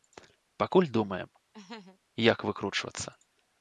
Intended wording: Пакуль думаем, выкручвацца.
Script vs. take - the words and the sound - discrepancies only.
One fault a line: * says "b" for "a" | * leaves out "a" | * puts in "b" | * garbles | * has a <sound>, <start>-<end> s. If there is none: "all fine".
* has a laugh, 1.5-2.0 s
* puts in "як"